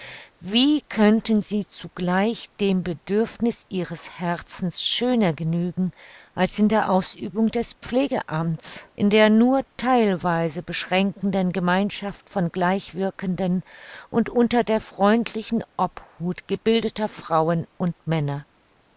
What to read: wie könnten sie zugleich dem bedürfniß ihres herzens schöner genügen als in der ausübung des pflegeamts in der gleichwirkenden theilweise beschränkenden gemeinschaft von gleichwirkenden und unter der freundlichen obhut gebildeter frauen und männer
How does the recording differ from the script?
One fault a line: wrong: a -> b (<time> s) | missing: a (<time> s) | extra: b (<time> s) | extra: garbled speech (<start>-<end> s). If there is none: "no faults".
wrong: gleichwirkenden -> nur (9.3 s)